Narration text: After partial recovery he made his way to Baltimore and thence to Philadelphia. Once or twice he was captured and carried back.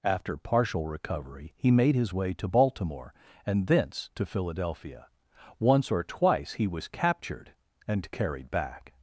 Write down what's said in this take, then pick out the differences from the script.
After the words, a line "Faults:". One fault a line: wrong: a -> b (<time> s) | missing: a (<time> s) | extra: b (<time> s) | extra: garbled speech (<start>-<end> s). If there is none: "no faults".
After partial recovery he made his way to Baltimore and thence to Philadelphia. Once or twice he was captured and carried back.
Faults:
no faults